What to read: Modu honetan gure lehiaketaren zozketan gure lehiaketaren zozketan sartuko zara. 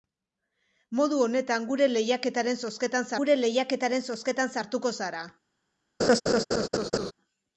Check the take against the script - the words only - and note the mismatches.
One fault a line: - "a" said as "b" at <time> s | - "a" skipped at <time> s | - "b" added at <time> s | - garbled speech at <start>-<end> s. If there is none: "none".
none